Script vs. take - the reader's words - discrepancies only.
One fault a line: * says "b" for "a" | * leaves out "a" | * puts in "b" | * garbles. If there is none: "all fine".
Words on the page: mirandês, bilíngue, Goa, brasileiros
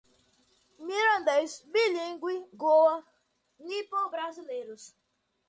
* puts in "nipo"